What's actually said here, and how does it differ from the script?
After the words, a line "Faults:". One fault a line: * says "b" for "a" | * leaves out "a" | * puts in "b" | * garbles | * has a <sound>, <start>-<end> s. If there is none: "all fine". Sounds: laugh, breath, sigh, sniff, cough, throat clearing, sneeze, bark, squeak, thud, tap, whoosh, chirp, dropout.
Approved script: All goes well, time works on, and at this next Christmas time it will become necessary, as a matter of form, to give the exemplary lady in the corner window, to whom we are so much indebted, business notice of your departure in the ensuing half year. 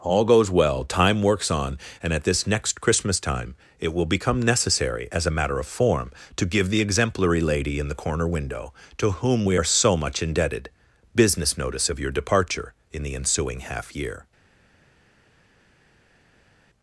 All goes well, time works on, and at this next Christmas time it will become necessary, as a matter of form, to give the exemplary lady in the corner window, to whom we are so much indebted, business notice of your departure in the ensuing half year.
Faults:
all fine